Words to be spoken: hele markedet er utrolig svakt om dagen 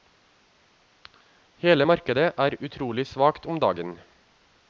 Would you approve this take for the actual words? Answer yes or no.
yes